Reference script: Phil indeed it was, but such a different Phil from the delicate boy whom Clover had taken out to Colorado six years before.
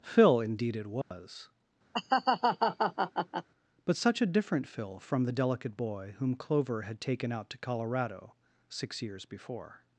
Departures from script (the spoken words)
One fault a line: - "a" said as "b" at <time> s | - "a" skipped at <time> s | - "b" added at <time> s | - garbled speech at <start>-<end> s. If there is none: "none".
none